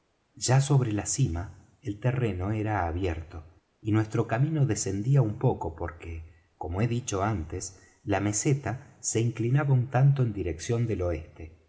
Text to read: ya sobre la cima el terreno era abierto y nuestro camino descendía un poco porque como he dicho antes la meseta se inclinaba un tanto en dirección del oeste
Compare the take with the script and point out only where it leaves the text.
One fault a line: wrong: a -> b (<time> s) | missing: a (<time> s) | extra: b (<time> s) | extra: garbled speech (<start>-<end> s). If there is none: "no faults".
no faults